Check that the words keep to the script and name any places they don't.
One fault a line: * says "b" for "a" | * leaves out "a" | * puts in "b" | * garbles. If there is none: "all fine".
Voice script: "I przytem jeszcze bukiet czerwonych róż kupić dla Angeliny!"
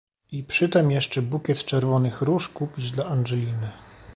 all fine